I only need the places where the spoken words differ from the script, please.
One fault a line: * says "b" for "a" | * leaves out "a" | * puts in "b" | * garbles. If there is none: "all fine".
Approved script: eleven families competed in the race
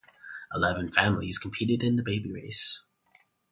* puts in "baby"